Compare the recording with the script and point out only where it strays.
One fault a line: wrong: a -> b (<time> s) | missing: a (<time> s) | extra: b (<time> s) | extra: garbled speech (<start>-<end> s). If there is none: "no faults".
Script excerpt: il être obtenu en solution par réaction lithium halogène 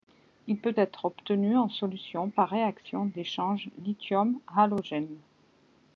extra: peut (0.6 s)
extra: d'échange (3.1 s)